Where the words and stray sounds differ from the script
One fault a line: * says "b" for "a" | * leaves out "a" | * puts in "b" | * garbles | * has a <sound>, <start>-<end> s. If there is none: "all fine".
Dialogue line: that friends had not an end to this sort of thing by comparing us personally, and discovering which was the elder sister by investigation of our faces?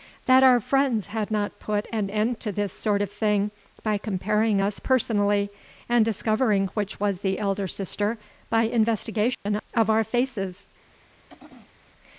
* puts in "our"
* puts in "put"
* has a dropout, 9.3-9.5 s
* has a throat clearing, 11.3-11.9 s